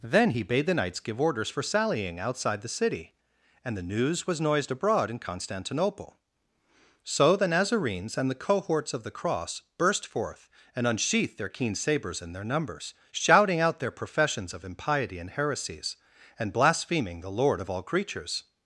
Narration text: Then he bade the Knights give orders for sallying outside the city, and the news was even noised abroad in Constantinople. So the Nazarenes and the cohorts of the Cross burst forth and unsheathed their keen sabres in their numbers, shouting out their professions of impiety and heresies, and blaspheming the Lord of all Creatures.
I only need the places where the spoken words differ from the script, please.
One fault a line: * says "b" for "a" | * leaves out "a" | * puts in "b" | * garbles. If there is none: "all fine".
* leaves out "even"